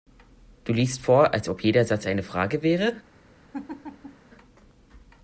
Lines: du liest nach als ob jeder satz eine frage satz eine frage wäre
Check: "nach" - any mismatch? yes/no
yes